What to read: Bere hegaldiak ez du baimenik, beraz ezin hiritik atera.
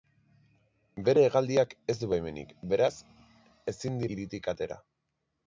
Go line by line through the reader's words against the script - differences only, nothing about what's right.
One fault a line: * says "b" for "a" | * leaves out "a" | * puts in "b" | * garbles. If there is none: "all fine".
all fine